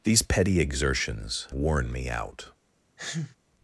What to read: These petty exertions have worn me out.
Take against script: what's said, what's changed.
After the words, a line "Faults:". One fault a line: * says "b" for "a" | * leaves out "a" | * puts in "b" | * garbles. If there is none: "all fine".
These petty exertions worn me out.
Faults:
* leaves out "have"